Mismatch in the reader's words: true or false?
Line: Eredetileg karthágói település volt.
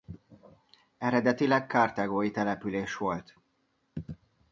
false